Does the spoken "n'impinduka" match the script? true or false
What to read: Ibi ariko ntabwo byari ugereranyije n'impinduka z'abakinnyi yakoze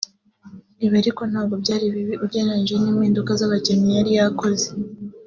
true